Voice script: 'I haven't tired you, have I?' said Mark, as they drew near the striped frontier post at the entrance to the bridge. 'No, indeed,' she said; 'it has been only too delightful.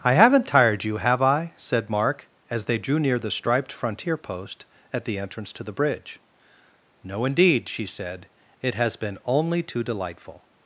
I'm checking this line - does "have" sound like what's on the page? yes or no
yes